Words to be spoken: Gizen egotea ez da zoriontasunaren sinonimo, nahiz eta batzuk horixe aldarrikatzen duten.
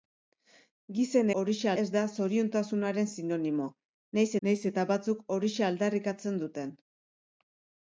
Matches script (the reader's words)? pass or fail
fail